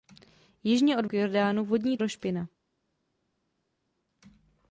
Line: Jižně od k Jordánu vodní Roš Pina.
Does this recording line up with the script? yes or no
yes